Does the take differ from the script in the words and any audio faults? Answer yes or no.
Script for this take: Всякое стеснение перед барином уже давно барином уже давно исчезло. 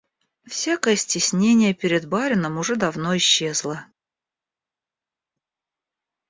yes